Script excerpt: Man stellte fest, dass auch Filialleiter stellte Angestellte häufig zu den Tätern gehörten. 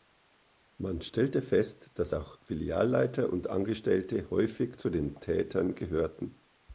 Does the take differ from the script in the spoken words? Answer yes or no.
yes